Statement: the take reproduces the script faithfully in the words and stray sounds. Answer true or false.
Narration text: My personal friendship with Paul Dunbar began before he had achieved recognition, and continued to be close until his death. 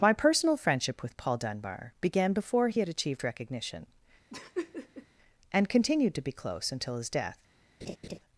false